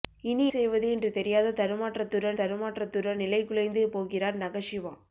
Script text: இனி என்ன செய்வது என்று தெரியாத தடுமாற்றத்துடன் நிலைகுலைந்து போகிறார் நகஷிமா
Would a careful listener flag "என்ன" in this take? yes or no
yes